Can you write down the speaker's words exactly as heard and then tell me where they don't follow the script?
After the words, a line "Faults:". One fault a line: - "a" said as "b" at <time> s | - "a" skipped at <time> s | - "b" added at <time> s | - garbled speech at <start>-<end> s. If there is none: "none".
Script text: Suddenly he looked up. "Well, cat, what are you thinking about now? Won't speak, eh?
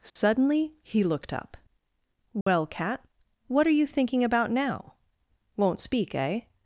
Suddenly he looked up. "Well, cat, what are you thinking about now? Won't speak, eh?
Faults:
none